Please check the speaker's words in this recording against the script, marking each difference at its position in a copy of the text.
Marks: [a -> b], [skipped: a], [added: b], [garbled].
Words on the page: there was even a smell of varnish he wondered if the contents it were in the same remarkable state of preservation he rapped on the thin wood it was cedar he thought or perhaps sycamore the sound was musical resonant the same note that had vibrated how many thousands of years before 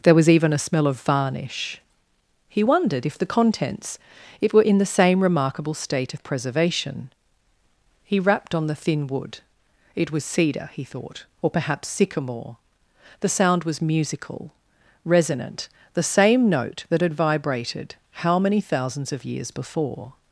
there was even a smell of varnish he wondered if the contents it were in the same remarkable state of preservation he rapped on the thin wood it was cedar he thought or perhaps sycamore the sound was musical resonant the same note that had vibrated how many thousands of years before